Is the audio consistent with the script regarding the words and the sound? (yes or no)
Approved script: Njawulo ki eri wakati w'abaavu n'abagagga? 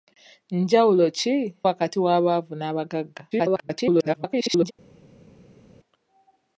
no